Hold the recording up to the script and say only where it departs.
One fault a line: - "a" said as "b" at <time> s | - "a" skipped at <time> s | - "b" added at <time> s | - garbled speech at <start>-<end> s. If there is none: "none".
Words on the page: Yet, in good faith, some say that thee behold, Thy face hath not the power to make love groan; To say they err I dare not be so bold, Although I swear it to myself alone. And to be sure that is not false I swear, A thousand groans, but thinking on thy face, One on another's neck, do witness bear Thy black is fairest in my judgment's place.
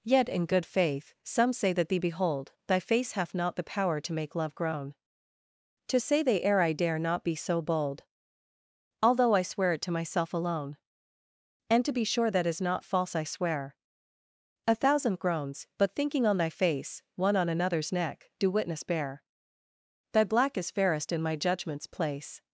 none